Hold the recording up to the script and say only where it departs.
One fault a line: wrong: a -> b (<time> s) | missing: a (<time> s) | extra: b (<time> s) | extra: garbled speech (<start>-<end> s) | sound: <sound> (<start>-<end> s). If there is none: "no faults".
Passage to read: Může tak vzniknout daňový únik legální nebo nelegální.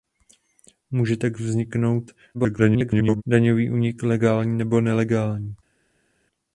extra: garbled speech (2.3-3.2 s)